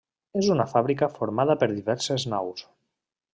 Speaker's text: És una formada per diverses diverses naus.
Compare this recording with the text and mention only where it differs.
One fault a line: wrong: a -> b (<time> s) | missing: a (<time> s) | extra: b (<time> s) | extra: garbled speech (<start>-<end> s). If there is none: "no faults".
extra: fàbrica (0.7 s)
missing: diverses (2.3 s)